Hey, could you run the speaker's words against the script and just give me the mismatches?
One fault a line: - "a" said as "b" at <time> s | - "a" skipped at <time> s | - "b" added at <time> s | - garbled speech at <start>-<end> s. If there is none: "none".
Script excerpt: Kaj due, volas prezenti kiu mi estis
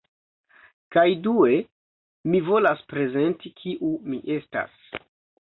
- "mi" added at 2.3 s
- "estis" said as "estas" at 4.4 s